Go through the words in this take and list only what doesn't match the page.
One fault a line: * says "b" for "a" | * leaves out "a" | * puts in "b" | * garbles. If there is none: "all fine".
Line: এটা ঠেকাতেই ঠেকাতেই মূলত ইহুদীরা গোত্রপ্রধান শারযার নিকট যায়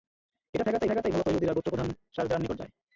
all fine